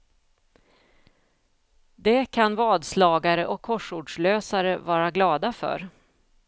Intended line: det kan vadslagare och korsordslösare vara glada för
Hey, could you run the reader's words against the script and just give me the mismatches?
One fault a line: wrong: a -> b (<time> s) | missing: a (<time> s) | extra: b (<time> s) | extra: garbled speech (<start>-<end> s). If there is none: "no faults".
no faults